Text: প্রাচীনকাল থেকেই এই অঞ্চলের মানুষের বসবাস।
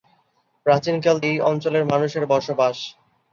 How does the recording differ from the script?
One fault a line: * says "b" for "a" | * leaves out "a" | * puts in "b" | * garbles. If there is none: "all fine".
* leaves out "থেকেই"